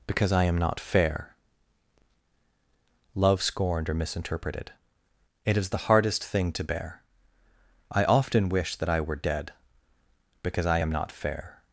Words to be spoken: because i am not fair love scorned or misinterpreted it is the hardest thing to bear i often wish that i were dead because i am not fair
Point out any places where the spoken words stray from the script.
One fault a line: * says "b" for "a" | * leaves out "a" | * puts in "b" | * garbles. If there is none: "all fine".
all fine